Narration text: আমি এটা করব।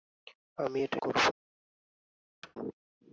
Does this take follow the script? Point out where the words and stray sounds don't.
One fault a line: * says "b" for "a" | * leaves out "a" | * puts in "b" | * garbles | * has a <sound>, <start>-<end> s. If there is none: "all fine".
* has a thud, 2.4-2.6 s